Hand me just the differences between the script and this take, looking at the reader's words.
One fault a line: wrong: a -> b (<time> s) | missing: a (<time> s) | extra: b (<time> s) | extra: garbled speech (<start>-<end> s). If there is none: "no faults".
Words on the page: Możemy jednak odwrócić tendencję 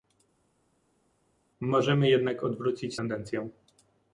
no faults